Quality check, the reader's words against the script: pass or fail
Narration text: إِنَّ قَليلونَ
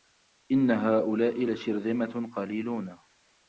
fail